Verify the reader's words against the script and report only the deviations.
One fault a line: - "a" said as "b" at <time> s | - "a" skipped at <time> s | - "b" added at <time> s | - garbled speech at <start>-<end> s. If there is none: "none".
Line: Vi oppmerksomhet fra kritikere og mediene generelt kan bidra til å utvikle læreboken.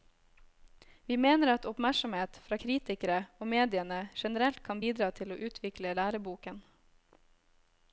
- "mener at" added at 1.2 s